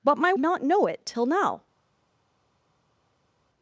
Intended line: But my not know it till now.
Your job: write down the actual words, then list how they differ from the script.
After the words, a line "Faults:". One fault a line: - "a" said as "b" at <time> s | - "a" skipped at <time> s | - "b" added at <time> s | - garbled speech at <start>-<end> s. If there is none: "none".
But my not know it till now.
Faults:
none